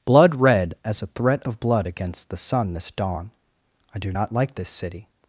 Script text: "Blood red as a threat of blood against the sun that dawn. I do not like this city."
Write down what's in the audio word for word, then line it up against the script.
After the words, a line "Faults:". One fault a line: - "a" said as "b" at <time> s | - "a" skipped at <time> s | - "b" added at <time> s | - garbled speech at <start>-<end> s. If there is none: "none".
"Blood red as a threat of blood against the sun this dawn. I do not like this city."
Faults:
- "that" said as "this" at 2.7 s